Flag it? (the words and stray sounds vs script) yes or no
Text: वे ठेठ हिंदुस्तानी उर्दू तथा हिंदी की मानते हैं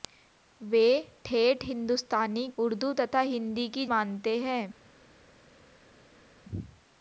no